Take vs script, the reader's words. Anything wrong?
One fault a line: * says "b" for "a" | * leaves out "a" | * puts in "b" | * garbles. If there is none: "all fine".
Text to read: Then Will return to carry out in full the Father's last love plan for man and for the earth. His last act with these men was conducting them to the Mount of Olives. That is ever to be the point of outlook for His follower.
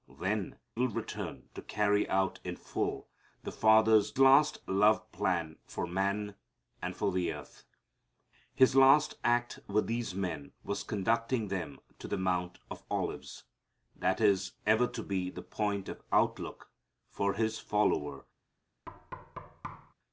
all fine